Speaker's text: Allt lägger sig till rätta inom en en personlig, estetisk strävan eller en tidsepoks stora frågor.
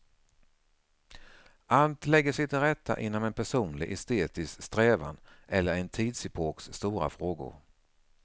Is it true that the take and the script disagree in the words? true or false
true